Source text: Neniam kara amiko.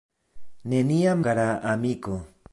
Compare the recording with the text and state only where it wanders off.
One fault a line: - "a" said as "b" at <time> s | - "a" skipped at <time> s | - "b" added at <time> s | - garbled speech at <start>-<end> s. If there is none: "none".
none